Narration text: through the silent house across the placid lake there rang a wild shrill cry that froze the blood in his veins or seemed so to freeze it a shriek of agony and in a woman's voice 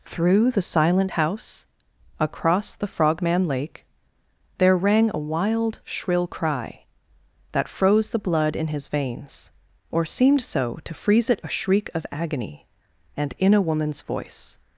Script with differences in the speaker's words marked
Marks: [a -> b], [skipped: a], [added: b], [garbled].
through the silent house across the [placid -> frogman] lake there rang a wild shrill cry that froze the blood in his veins or seemed so to freeze it a shriek of agony and in a woman's voice